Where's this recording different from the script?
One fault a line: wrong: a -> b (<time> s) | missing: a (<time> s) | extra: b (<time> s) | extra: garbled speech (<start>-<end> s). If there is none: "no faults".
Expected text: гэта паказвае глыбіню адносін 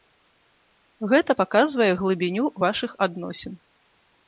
extra: вашых (2.7 s)